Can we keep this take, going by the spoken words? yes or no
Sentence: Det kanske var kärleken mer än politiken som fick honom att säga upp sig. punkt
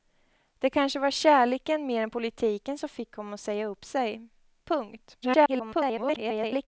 no